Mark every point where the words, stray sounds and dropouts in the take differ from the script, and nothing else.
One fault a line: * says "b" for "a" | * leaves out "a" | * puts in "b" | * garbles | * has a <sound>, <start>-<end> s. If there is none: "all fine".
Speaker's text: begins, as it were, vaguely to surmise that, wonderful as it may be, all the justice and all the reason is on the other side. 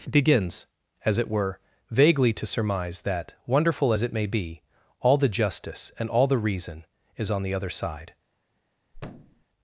* has a thud, 8.9-9.4 s